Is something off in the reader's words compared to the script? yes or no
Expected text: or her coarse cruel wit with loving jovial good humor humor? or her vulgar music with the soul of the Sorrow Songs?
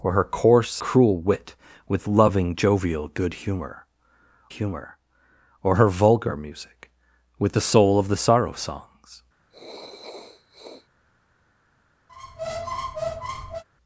no